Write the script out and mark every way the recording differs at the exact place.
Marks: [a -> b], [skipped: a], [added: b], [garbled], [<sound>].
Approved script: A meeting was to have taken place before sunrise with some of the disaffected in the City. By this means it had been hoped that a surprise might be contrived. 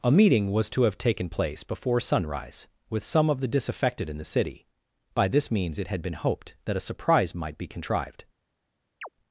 A meeting was to have taken place before sunrise with some of the disaffected in the City. By this means it had been hoped that a surprise might be contrived. [chirp]